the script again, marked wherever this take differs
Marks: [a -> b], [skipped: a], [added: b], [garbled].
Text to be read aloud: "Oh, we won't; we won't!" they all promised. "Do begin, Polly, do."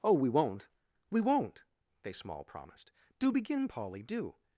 "Oh, we won't; we won't!" they [all -> small] promised. "Do begin, Polly, do."